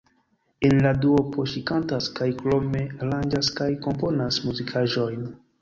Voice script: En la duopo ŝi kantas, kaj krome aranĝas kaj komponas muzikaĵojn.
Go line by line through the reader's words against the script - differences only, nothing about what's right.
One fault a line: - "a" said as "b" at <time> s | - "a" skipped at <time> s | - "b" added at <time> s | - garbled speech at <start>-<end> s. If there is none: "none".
none